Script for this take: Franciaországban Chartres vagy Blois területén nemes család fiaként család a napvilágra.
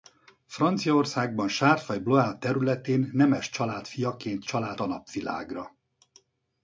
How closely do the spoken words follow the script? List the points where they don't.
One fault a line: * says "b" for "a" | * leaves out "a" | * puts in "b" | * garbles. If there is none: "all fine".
all fine